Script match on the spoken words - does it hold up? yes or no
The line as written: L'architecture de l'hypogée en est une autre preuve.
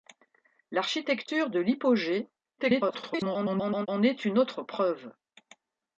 no